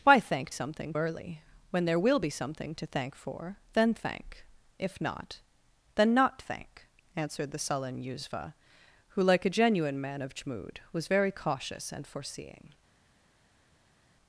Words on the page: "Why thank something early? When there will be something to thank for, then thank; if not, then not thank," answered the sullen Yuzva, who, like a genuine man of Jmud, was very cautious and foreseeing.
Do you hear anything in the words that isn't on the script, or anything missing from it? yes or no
no